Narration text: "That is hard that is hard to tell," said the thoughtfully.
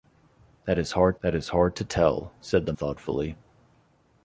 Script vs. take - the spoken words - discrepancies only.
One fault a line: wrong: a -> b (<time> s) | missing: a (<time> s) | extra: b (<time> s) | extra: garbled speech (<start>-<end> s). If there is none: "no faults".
no faults